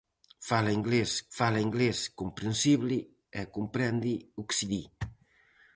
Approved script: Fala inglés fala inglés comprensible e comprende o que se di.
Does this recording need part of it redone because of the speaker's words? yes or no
no